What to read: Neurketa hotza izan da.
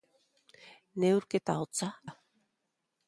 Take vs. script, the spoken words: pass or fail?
fail